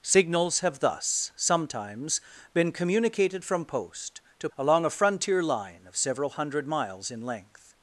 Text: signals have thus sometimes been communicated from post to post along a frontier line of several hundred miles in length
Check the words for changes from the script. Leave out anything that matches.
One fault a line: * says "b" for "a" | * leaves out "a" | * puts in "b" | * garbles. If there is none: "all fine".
* leaves out "post"